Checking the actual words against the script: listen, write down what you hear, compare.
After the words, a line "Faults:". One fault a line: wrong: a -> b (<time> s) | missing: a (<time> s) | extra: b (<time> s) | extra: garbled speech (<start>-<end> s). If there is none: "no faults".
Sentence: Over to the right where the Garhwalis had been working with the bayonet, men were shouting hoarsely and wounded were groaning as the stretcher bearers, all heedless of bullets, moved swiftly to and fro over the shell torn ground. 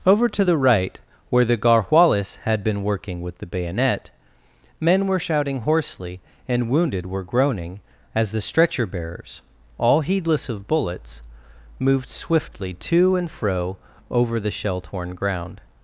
Over to the right where the Garhwalis had been working with the bayonet, men were shouting hoarsely and wounded were groaning as the stretcher bearers, all heedless of bullets, moved swiftly to and fro over the shell torn ground.
Faults:
no faults